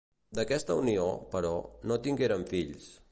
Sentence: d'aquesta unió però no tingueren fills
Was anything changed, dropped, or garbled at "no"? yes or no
no